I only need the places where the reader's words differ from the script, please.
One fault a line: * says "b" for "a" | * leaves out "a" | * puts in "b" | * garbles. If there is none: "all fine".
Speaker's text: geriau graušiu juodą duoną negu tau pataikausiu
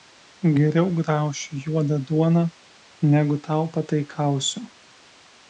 all fine